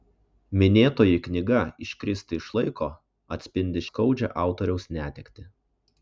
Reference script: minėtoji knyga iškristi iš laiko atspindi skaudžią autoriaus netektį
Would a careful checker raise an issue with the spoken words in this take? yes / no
no